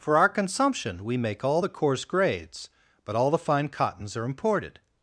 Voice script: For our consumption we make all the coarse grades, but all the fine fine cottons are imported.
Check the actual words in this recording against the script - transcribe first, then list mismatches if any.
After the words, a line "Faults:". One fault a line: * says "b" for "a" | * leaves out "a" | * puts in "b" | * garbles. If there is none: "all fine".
For our consumption we make all the coarse grades, but all the fine cottons are imported.
Faults:
* leaves out "fine"